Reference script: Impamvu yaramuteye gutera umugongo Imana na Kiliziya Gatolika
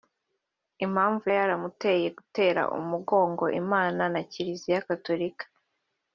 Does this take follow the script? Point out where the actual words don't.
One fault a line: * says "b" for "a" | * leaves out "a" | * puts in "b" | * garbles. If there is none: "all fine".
all fine